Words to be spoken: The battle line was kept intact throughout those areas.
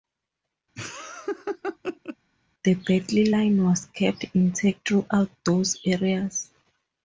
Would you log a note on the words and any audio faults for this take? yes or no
yes